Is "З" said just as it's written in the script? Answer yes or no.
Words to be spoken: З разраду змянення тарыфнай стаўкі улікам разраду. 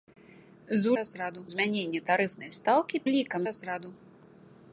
yes